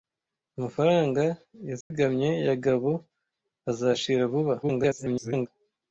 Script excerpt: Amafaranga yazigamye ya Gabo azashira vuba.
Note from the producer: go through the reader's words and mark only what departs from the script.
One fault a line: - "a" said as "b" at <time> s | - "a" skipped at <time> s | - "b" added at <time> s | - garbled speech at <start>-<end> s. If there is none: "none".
- garbled speech at 4.6-5.5 s